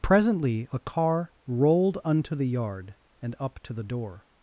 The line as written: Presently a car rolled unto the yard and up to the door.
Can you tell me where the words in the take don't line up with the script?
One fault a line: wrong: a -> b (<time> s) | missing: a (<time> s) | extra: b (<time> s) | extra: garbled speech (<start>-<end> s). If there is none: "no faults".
no faults